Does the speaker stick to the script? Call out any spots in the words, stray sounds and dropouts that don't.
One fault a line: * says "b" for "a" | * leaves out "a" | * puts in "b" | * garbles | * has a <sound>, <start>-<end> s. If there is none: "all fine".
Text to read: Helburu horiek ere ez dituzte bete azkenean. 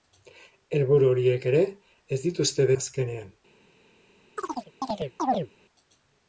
* leaves out "bete"
* has a chirp, 4.4-5.5 s